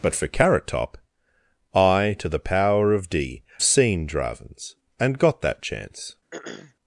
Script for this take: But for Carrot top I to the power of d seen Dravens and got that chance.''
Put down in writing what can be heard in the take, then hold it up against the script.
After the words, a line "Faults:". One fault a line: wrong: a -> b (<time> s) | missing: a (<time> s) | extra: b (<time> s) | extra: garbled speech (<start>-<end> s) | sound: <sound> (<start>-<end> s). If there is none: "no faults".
But for Carrot top I to the power of d seen Dravens and got that chance.''
Faults:
sound: throat clearing (6.3-6.7 s)